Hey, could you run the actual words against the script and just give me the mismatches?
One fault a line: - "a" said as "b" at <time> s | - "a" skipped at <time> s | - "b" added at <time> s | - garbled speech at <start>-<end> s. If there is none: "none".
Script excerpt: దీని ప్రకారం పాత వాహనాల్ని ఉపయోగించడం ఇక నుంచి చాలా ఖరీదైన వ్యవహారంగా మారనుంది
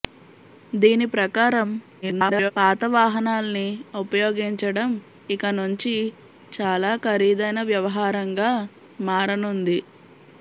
- garbled speech at 2.0-2.5 s